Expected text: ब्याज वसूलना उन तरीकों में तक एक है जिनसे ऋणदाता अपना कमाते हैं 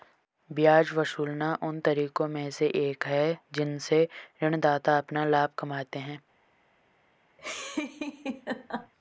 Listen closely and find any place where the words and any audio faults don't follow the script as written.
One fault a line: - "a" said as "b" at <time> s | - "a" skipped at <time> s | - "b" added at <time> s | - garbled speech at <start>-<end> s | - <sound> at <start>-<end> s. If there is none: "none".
- "तक" said as "से" at 2.5 s
- "लाभ" added at 5.2 s
- laugh at 7.4-8.9 s